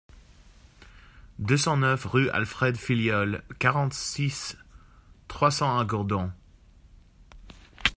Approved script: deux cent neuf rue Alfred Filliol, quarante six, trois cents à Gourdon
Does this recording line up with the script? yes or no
yes